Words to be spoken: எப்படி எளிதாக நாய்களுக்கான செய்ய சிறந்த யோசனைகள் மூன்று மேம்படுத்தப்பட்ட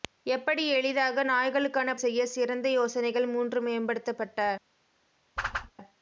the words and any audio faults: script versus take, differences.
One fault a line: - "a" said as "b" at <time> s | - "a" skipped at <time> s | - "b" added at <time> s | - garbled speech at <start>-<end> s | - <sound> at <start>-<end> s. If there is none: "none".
- whoosh at 5.4-5.7 s